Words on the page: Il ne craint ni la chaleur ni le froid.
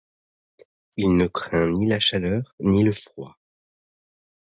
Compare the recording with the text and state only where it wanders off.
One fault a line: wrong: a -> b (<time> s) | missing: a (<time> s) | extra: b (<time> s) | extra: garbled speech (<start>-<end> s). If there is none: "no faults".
no faults